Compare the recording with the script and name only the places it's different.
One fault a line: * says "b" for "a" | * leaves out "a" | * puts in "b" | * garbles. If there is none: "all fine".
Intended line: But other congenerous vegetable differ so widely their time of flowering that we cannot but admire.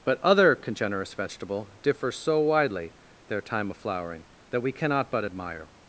all fine